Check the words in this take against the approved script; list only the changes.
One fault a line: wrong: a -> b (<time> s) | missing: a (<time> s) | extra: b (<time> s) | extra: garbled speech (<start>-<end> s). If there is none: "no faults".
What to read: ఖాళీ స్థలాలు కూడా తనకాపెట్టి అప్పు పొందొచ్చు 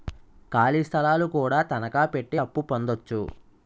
no faults